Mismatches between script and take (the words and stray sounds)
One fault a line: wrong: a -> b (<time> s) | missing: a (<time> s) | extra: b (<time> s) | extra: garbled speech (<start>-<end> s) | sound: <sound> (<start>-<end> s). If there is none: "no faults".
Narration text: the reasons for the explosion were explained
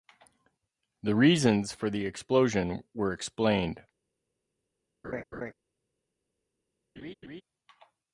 sound: laugh (5.0-5.5 s)
sound: laugh (7.0-7.4 s)